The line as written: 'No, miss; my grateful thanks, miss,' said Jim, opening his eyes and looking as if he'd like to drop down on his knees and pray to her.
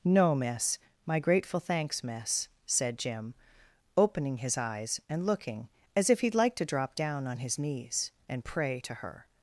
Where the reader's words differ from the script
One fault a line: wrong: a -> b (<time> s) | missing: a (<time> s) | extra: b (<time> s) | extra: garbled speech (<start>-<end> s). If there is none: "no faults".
no faults